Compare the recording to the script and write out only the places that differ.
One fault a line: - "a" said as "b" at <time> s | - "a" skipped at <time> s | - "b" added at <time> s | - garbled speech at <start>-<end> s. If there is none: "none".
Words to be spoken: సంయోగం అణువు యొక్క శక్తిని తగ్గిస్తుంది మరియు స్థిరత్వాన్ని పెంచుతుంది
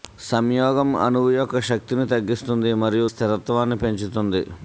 none